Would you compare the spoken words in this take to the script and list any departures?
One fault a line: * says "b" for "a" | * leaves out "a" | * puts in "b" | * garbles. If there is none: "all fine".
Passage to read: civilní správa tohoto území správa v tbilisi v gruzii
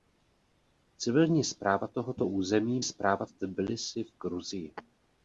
all fine